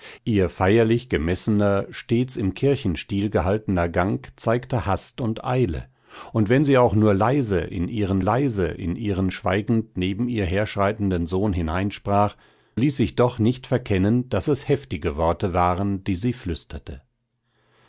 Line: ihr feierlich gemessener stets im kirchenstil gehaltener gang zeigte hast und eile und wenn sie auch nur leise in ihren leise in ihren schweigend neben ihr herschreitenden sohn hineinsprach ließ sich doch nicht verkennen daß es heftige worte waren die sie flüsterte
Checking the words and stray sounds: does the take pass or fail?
pass